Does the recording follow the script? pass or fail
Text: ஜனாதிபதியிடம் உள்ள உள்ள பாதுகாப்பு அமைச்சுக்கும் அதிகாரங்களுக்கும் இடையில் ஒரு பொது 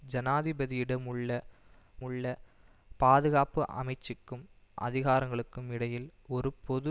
pass